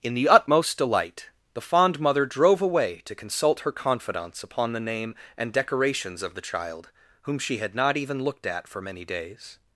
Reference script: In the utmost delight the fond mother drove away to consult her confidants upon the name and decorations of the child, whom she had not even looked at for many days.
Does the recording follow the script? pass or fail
pass